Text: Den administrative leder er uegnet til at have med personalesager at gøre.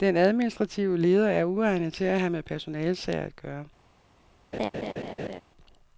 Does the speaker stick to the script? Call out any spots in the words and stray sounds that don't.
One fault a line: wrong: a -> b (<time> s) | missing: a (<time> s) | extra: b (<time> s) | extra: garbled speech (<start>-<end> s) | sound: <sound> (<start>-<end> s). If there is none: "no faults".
sound: laugh (4.5-5.4 s)